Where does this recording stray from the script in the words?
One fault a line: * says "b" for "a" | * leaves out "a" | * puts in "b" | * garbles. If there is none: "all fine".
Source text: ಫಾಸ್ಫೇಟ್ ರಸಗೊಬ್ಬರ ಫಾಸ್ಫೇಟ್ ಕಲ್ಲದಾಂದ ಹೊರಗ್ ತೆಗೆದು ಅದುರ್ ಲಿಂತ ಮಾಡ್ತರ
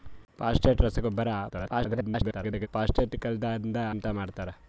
* garbles
* leaves out "ಹೊರಗ್ ತೆಗೆದು ಅದುರ್"